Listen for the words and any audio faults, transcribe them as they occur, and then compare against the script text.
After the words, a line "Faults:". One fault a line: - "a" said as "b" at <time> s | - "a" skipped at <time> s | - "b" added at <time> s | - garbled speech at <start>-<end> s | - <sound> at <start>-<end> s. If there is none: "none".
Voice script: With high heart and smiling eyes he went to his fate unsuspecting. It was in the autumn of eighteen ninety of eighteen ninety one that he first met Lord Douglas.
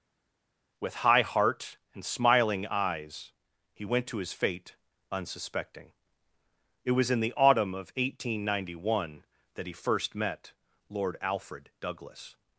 With high heart and smiling eyes he went to his fate unsuspecting. It was in the autumn of eighteen ninety one that he first met Lord Alfred Douglas.
Faults:
- "of eighteen ninety" skipped at 9.0 s
- "Alfred" added at 11.2 s